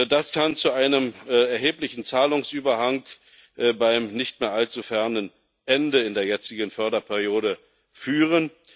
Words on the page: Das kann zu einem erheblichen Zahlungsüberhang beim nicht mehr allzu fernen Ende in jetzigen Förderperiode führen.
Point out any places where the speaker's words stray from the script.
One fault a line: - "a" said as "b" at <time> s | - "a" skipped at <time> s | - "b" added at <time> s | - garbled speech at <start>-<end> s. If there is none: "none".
- "der" added at 6.1 s